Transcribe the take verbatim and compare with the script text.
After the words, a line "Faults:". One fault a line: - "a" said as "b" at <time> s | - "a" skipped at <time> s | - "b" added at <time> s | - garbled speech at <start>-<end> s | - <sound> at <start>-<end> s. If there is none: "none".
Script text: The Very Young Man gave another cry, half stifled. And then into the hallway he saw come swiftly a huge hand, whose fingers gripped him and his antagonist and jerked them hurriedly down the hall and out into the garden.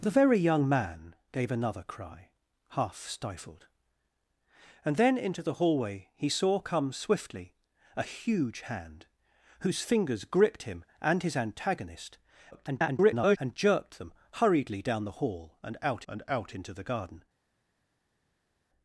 The Very Young Man gave another cry, half stifled. And then into the hallway he saw come swiftly a huge hand, whose fingers gripped him and his antagonist [garbled] and jerked them hurriedly down the hall and out and out into the garden.
Faults:
- garbled speech at 12.5-13.4 s
- "and out" added at 16.1 s